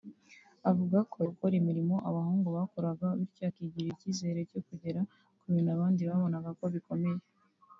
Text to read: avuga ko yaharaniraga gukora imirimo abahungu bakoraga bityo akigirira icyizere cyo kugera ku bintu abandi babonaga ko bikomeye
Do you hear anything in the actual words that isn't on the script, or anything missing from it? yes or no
yes